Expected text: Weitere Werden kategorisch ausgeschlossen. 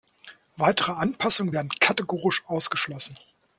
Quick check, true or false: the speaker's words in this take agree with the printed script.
false